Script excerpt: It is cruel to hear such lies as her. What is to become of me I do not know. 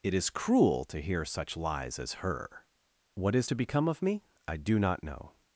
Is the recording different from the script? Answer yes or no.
no